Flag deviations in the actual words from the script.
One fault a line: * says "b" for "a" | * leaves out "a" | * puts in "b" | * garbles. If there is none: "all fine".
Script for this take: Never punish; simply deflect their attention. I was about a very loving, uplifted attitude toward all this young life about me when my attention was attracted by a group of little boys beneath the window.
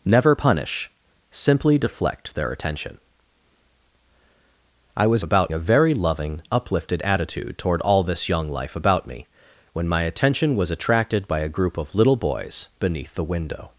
all fine